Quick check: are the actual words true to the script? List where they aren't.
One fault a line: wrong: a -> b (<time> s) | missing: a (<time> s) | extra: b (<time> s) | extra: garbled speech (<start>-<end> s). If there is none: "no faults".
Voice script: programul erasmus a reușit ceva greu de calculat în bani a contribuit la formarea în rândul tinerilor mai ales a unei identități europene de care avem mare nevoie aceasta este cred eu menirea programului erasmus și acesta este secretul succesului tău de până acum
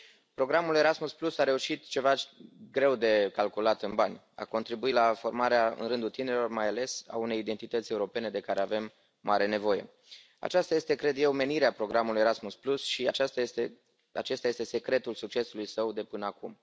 wrong: tău -> său (15.6 s)